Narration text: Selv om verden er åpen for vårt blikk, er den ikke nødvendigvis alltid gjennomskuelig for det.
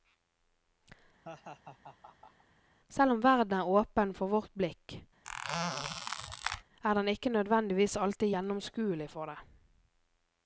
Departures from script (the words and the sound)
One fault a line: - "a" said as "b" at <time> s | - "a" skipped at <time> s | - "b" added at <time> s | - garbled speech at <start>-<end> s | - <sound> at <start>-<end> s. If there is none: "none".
- laugh at 1.2-2.4 s
- squeak at 5.2-6.6 s